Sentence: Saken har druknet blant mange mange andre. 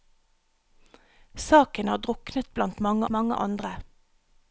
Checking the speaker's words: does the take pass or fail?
pass